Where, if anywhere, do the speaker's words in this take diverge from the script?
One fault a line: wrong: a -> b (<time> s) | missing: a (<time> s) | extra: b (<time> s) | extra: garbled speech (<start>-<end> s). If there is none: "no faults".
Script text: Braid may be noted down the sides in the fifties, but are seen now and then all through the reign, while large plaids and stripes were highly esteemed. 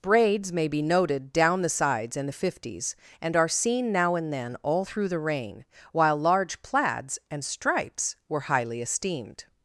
wrong: Braid -> Braids (0.0 s)
wrong: but -> and (3.2 s)